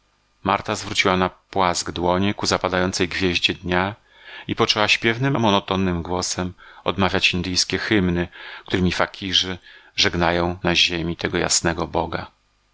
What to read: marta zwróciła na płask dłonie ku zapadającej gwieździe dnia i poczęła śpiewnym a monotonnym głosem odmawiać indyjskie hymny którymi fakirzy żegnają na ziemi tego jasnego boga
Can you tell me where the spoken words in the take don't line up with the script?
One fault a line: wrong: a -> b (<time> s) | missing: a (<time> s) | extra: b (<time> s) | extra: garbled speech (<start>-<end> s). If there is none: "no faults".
no faults